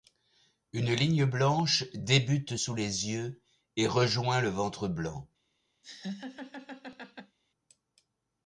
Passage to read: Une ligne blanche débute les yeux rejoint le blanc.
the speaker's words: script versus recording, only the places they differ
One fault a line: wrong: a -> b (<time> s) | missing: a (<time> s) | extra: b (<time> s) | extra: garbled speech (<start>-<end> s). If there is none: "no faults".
extra: sous (2.5 s)
extra: et (3.7 s)
extra: ventre (4.5 s)